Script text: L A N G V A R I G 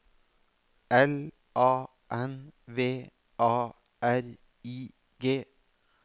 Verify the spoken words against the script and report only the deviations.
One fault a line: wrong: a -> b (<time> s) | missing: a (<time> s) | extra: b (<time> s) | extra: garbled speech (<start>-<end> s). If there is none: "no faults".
missing: G (2.5 s)